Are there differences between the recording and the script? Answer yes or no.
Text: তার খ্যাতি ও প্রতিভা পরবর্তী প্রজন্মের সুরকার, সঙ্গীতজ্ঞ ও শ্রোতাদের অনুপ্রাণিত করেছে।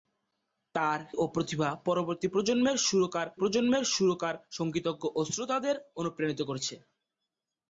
yes